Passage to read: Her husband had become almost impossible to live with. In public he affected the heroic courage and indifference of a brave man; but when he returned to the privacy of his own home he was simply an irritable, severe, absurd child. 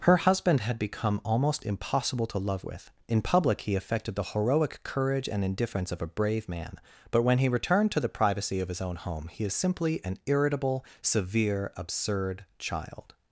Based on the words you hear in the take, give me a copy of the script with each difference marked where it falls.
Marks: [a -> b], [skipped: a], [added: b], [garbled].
Her husband had become almost impossible to [live -> love] with. In public he affected the heroic courage and indifference of a brave man; but when he returned to the privacy of his own home he [was -> is] simply an irritable, severe, absurd child.